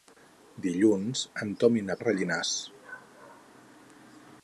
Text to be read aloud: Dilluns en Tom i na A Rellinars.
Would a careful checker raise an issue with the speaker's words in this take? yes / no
no